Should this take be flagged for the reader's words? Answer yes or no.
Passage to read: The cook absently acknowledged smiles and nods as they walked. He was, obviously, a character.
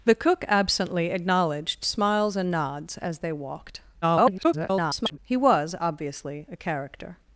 yes